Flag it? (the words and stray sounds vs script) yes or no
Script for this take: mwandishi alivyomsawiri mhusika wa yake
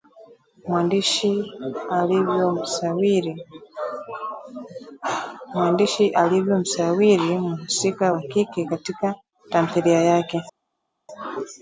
yes